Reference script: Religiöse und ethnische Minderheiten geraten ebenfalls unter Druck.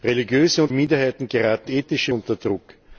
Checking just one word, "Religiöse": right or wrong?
right